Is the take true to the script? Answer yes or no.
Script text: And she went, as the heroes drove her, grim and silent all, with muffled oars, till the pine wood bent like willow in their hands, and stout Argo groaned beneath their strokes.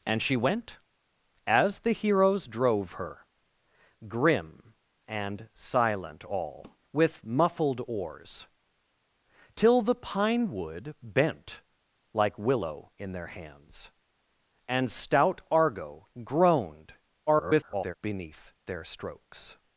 no